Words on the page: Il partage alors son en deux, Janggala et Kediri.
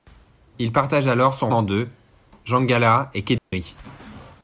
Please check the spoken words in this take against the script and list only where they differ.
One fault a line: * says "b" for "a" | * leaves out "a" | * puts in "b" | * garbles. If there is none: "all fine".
all fine